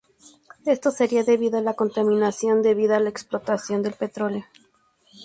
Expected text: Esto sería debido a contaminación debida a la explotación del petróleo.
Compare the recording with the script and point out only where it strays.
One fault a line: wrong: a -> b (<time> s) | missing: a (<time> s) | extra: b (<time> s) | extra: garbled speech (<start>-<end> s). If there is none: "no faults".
extra: la (1.6 s)